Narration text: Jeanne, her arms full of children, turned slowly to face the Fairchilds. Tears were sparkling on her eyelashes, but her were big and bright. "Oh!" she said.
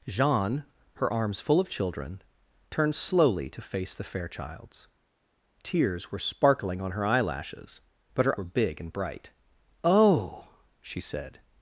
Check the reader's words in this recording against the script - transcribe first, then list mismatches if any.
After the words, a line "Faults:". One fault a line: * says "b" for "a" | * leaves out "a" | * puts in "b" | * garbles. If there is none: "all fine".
Jeanne, her arms full of children, turned slowly to face the Fairchilds. Tears were sparkling on her eyelashes, but her were big and bright. "Oh!" she said.
Faults:
all fine